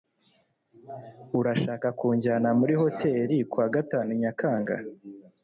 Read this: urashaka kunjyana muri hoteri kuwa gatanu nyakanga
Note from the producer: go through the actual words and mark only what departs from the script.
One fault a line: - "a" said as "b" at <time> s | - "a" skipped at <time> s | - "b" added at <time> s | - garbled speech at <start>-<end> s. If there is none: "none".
none